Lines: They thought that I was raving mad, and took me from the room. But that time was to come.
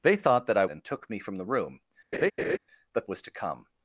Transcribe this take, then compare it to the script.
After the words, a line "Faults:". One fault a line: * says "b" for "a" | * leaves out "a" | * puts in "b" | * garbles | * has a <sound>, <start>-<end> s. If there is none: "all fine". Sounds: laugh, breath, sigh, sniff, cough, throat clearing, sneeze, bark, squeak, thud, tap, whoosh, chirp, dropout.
They thought that I and took me from the room. But was to come.
Faults:
* leaves out "was raving mad"
* has a laugh, 2.1-2.6 s
* leaves out "that time"